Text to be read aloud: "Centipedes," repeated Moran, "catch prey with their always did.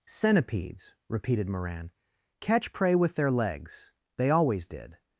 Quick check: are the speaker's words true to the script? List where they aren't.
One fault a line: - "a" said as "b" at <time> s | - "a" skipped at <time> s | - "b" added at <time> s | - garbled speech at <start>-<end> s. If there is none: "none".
- "legs They" added at 3.3 s